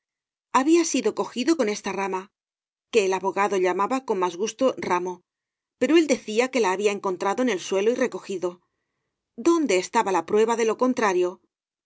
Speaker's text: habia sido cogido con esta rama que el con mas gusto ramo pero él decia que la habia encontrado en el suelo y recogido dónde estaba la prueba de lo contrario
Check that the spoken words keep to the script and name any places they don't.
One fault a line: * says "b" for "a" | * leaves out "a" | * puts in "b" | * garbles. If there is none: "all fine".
* puts in "abogado llamaba"